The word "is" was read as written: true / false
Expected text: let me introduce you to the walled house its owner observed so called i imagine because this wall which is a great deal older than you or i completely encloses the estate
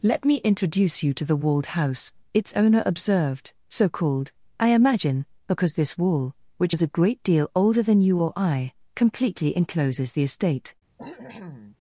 true